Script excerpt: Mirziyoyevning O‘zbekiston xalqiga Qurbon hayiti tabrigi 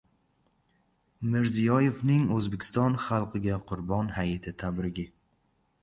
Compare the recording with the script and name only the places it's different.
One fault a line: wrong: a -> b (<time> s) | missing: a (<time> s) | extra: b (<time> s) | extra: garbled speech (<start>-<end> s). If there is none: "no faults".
no faults